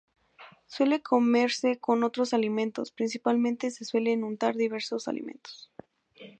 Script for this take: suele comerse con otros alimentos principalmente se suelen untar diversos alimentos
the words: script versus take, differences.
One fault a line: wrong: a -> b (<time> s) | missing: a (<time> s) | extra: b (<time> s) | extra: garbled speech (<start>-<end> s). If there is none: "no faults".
no faults